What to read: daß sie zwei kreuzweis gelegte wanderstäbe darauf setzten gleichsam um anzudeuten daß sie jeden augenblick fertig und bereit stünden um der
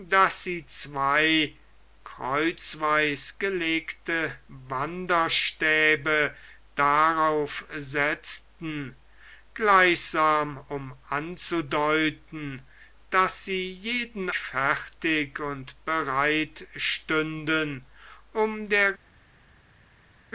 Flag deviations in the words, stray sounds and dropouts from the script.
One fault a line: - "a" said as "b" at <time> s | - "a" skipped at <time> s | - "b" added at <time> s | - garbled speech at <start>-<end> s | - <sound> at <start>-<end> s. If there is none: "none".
- "augenblick" skipped at 14.3 s